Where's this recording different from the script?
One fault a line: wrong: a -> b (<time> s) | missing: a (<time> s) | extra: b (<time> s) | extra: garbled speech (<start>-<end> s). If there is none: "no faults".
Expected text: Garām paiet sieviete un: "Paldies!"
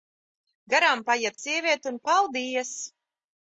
no faults